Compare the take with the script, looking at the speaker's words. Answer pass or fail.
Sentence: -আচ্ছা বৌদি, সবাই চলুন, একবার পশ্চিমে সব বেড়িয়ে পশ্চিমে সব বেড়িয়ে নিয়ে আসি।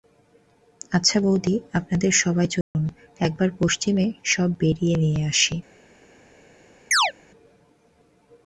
fail